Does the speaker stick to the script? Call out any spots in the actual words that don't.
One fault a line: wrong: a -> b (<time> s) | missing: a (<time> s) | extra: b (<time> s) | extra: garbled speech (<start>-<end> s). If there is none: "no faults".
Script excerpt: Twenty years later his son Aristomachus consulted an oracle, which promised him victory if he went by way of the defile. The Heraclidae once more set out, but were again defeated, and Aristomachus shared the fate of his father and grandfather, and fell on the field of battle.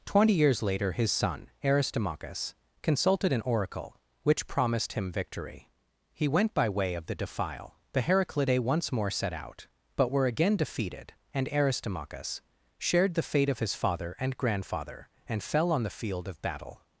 missing: if (5.7 s)